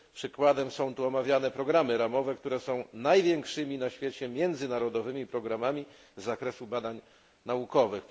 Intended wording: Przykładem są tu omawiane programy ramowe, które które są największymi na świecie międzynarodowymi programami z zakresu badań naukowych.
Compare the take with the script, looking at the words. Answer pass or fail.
fail